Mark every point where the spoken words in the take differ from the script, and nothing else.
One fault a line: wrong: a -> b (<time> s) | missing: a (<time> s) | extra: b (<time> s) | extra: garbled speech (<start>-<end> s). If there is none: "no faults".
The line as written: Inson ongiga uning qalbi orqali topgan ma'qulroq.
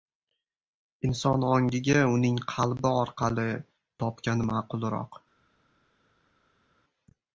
no faults